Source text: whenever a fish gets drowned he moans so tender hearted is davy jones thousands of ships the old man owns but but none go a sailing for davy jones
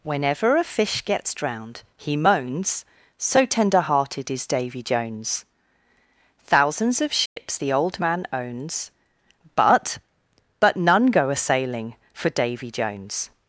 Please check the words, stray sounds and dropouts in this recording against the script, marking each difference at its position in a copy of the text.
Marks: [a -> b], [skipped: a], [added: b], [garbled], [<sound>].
whenever a fish gets drowned he moans so tender hearted is davy jones thousands of ships [dropout] the old man owns but but none go a sailing for davy jones